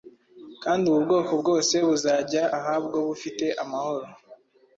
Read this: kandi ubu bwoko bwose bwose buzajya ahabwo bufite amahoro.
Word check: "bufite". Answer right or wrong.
right